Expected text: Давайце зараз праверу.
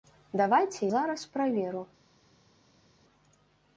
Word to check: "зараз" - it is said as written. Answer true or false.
true